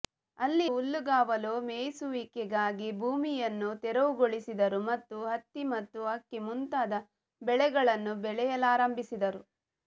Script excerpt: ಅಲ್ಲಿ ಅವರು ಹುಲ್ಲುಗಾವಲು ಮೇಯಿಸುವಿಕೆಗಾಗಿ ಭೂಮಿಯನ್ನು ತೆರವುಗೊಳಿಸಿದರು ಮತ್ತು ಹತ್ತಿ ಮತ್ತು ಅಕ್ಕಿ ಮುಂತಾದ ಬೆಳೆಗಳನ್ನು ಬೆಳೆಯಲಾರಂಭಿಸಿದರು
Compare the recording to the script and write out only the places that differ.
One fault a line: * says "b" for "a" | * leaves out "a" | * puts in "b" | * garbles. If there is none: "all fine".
* leaves out "ಅವರು"